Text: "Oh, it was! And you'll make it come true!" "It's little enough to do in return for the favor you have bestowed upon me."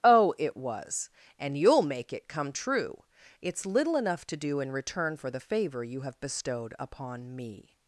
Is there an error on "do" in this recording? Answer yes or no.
no